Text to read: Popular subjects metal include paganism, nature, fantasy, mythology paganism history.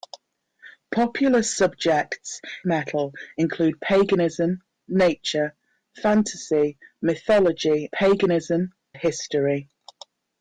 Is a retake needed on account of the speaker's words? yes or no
no